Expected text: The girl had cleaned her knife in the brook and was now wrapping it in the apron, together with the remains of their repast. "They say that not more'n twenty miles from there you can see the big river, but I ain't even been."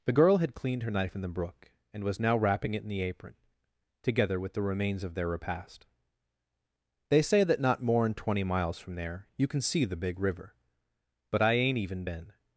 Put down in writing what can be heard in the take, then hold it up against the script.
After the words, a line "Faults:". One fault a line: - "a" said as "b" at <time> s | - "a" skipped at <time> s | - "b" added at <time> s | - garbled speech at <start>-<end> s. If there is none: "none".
The girl had cleaned her knife in the brook and was now wrapping it in the apron, together with the remains of their repast. "They say that not more'n twenty miles from there you can see the big river, but I ain't even been."
Faults:
none